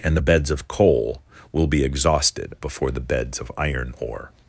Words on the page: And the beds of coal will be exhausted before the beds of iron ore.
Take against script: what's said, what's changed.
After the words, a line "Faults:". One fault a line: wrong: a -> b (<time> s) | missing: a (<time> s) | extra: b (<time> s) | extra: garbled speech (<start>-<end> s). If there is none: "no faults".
And the beds of coal will be exhausted before the beds of iron ore.
Faults:
no faults